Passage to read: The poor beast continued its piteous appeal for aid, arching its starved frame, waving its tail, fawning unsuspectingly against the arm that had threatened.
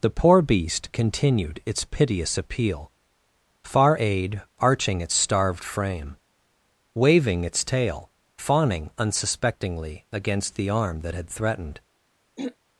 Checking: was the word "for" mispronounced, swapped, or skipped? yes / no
yes